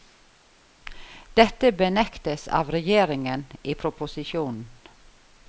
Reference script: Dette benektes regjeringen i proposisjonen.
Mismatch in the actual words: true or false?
true